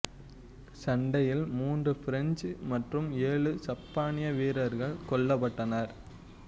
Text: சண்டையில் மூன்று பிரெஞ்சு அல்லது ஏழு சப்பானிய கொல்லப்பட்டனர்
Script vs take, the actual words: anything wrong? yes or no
yes